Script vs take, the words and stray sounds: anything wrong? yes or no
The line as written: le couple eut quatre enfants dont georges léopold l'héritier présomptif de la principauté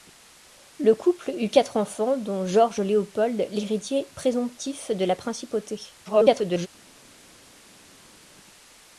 yes